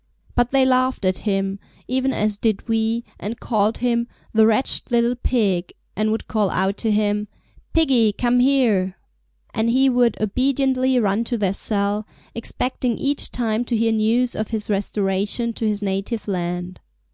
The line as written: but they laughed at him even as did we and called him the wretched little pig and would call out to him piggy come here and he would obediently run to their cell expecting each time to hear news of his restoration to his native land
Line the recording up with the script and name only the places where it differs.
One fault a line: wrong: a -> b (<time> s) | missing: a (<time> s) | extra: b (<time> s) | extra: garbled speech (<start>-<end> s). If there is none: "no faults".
no faults